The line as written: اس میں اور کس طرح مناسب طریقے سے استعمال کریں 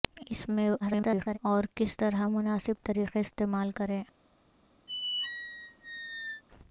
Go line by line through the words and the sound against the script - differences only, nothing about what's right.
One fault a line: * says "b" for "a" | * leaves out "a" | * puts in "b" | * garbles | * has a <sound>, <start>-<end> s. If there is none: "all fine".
* garbles
* leaves out "سے"
* has a squeak, 4.9-6.4 s